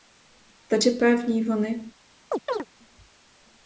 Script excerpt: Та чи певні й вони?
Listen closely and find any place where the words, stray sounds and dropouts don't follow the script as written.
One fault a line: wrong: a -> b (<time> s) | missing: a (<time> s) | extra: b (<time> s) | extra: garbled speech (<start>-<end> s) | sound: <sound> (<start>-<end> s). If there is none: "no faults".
sound: chirp (2.3-2.7 s)